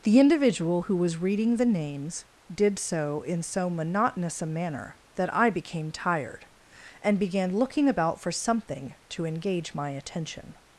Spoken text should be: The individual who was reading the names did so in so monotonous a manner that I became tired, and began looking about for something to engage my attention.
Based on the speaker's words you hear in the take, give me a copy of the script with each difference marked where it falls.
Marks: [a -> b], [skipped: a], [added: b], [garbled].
The individual who was reading the names did so in so monotonous a manner that I became tired, and began looking about for something to engage my attention.